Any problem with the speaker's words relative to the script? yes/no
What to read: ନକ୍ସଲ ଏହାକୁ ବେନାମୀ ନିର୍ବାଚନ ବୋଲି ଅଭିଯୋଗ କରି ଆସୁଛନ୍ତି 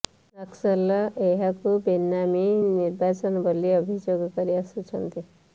no